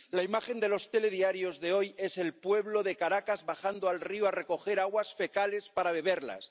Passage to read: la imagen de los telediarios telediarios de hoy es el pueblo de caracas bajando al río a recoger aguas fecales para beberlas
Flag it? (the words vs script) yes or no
yes